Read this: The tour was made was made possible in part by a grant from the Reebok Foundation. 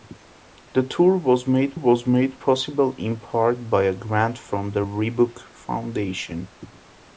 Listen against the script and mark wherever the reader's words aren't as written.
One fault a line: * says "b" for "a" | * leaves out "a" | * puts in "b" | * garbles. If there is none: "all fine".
all fine